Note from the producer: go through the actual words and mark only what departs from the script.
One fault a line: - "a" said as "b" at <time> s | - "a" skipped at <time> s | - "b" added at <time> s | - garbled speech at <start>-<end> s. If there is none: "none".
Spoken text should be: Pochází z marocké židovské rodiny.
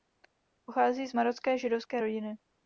none